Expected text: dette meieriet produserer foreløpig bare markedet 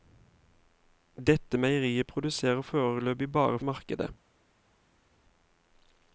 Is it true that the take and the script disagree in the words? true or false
false